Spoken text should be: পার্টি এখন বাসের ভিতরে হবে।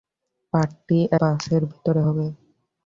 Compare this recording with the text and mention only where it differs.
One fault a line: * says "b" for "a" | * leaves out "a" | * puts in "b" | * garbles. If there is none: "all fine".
* leaves out "এখন"